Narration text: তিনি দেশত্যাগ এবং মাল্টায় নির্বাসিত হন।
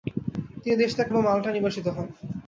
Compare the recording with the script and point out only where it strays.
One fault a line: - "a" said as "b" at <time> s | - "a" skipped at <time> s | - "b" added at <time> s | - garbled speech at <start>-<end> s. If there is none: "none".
none